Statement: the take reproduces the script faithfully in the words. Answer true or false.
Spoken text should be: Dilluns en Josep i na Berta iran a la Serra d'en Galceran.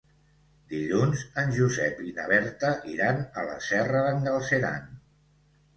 true